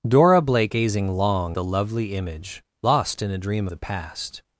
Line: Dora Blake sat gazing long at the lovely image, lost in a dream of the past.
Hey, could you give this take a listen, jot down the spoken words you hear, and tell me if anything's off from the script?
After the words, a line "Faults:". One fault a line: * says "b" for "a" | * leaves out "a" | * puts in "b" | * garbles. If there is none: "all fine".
Dora Blake gazing long the lovely image, lost in a dream the past.
Faults:
* leaves out "sat"
* leaves out "at"
* leaves out "of"